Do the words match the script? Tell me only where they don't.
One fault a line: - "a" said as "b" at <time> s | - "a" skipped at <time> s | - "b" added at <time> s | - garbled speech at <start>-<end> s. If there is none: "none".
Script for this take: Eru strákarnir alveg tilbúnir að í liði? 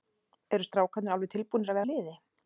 none